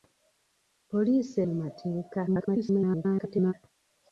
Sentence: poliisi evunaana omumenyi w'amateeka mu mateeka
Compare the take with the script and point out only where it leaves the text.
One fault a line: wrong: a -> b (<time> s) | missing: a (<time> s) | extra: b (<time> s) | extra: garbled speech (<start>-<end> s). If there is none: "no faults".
missing: evunaana omumenyi w'amateeka (1.4 s)
extra: garbled speech (2.3-3.5 s)